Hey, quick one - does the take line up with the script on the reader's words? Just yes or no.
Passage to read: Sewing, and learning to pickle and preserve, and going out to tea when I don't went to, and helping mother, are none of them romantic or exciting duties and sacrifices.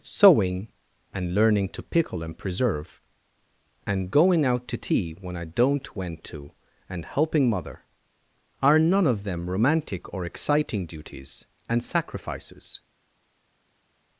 yes